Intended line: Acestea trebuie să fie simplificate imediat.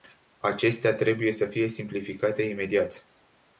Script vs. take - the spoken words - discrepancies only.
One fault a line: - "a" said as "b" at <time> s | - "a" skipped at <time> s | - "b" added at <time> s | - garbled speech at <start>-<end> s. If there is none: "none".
none